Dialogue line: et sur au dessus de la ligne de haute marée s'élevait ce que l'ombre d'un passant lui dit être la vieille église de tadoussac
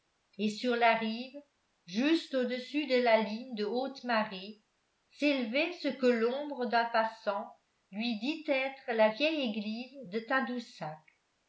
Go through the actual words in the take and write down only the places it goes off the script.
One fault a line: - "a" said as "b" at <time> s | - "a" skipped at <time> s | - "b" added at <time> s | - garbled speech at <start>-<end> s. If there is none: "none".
- "la rive juste" added at 0.8 s